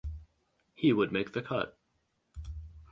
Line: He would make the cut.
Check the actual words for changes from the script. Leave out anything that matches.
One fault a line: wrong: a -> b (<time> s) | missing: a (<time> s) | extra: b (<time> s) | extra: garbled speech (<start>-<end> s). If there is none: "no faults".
no faults